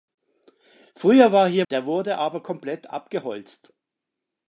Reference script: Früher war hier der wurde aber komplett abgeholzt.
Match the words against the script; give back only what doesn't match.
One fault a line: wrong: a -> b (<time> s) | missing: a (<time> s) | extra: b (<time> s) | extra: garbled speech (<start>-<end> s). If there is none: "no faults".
no faults